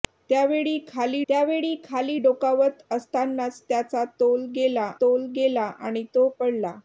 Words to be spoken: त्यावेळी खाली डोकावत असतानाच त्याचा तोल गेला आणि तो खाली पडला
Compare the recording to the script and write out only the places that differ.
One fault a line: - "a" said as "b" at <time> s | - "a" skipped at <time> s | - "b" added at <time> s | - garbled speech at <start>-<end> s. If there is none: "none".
- "त्यावेळी खाली" added at 1.3 s
- "तोल गेला" added at 5.0 s
- "खाली" skipped at 6.3 s